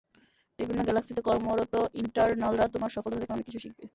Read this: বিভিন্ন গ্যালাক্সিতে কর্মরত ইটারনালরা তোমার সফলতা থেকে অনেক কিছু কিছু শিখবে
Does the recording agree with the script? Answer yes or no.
no